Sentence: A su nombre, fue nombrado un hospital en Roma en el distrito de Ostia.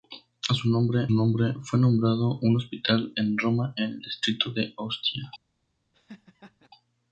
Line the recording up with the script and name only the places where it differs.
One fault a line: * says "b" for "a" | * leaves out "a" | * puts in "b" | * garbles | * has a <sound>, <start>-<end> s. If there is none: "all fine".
* puts in "nombre"
* has a laugh, 5.9-6.7 s